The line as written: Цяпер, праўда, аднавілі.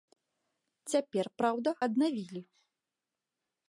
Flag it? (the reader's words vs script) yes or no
no